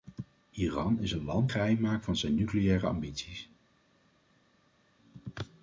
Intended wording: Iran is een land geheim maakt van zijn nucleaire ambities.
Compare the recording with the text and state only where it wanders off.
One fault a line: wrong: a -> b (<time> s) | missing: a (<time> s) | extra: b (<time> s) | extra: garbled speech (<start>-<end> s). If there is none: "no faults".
no faults